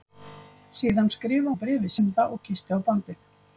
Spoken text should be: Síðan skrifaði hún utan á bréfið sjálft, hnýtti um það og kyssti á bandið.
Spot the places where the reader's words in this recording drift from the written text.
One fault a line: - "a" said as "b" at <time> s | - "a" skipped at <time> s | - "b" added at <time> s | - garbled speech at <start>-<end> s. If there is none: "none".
- "hún utan" skipped at 1.5 s
- "sjálft hnýtti" skipped at 2.0 s